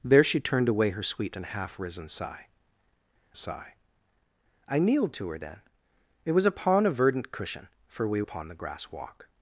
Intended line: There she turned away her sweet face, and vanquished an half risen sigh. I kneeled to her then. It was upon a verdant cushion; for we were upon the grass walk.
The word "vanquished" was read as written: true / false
false